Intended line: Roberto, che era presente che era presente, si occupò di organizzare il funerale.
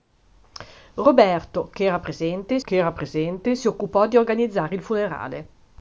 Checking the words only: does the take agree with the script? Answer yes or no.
yes